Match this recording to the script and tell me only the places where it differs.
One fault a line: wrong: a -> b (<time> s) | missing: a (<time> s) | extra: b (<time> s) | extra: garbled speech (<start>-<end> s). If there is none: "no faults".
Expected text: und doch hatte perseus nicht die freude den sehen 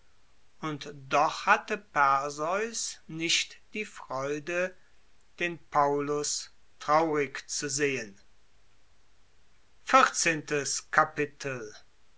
extra: paullus traurig zu (5.7 s)